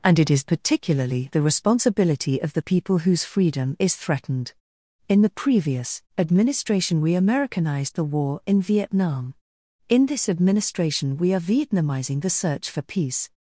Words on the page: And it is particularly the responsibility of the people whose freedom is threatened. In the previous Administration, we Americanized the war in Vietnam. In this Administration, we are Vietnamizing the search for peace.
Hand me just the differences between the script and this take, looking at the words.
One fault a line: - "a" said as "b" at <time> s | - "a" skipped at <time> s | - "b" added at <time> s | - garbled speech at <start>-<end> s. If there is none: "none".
none